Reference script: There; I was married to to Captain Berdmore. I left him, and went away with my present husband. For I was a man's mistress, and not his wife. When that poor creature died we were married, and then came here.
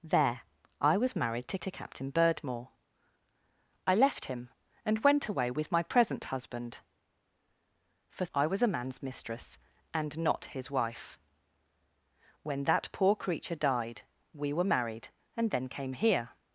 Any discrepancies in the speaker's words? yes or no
no